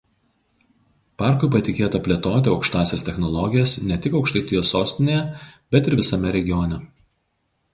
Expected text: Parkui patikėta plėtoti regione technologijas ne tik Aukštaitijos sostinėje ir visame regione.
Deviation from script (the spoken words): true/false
true